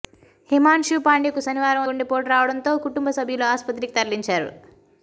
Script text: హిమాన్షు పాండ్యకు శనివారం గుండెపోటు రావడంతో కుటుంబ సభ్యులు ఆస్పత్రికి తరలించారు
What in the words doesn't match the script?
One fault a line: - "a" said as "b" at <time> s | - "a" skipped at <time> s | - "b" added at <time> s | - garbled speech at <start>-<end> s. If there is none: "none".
none